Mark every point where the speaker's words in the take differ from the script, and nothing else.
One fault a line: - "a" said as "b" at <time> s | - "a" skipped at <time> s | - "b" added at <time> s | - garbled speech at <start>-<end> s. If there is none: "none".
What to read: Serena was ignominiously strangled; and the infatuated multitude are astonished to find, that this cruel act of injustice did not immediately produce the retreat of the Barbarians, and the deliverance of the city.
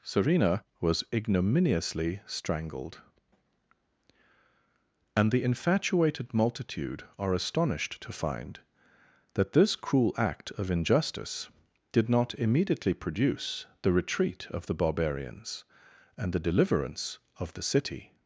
none